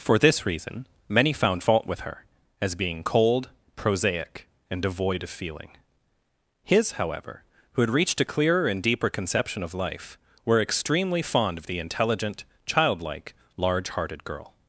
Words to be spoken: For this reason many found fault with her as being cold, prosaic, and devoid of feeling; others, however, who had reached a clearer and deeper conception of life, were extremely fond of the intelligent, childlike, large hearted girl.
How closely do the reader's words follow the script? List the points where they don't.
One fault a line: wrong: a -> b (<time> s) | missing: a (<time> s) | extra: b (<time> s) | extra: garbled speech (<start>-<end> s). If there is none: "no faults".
wrong: others -> his (6.6 s)